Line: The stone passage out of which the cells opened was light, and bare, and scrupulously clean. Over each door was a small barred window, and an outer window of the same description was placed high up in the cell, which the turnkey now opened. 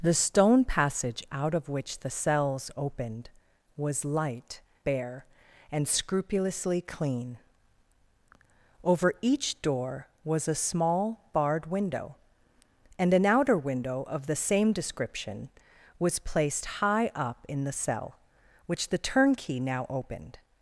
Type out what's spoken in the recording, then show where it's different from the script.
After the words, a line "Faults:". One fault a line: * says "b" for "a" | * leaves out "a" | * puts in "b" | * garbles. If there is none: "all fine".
The stone passage out of which the cells opened was light, bare, and scrupulously clean. Over each door was a small barred window, and an outer window of the same description was placed high up in the cell, which the turnkey now opened.
Faults:
* leaves out "and"